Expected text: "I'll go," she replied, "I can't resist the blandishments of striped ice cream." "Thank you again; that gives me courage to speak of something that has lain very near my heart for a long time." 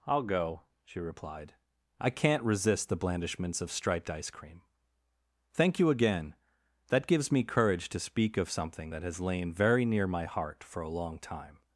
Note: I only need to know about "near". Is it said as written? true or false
true